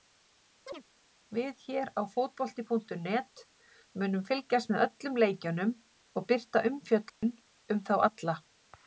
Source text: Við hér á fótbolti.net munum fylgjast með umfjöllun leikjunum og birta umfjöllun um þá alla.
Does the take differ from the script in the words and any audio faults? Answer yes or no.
yes